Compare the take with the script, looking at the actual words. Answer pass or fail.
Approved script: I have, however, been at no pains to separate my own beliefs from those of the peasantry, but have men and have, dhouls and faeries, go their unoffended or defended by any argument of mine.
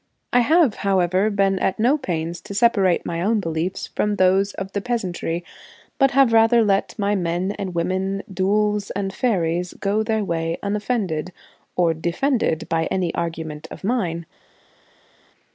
fail